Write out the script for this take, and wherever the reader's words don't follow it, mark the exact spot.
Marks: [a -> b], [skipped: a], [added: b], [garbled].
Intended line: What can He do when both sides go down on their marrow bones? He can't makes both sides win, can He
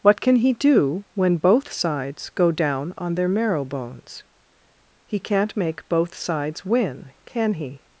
What can He do when both sides go down on their marrow bones? He can't [makes -> make] both sides win, can He